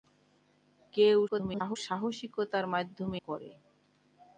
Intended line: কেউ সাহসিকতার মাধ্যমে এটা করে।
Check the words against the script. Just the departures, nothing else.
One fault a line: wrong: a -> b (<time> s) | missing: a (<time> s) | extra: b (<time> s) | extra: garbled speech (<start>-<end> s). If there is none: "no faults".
extra: garbled speech (1.3-1.8 s)
missing: এটা (3.2 s)